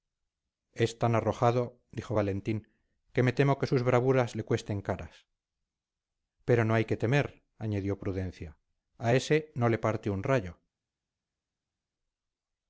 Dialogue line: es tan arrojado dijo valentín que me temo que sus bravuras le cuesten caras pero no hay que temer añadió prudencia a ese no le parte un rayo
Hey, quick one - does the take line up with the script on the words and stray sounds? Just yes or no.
yes